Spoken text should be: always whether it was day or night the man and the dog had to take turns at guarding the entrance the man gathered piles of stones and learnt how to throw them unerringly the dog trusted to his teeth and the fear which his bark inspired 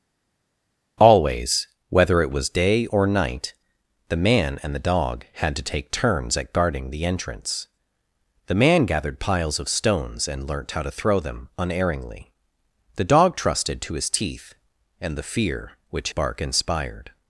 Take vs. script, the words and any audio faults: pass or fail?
fail